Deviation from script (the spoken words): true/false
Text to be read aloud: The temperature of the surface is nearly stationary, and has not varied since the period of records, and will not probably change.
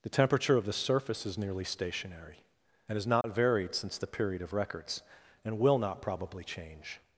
false